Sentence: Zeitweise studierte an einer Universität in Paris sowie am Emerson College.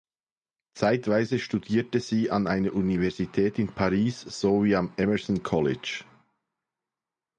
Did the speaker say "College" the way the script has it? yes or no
yes